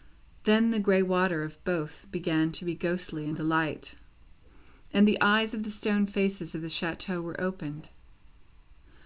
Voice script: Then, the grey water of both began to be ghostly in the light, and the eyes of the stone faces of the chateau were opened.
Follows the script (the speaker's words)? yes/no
yes